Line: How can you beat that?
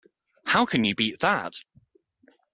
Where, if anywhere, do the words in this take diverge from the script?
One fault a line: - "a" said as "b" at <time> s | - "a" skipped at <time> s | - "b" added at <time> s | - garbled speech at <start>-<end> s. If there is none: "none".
none